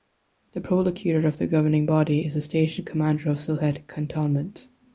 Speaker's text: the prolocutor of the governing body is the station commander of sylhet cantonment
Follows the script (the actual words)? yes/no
yes